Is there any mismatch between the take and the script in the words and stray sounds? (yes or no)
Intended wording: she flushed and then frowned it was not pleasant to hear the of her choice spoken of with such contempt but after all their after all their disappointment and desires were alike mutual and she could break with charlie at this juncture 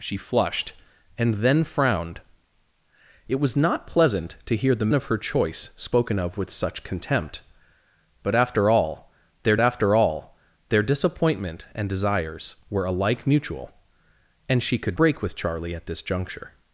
no